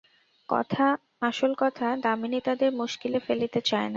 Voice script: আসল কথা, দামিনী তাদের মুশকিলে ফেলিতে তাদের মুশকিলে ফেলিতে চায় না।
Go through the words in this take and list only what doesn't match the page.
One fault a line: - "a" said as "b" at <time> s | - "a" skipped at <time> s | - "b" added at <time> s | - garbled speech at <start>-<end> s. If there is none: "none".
- "তাদের মুশকিলে ফেলিতে" skipped at 3.6 s